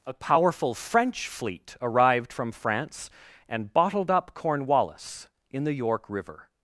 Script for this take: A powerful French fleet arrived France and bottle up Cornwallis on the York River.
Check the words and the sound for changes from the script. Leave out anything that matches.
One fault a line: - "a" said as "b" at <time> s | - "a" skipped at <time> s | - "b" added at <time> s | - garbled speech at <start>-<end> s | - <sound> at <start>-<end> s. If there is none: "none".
- "from" added at 2.3 s
- "bottle" said as "bottled" at 3.7 s
- "on" said as "in" at 5.5 s